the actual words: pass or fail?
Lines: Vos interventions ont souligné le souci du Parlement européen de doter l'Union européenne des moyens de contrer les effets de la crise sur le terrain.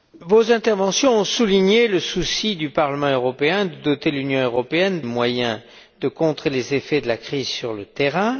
fail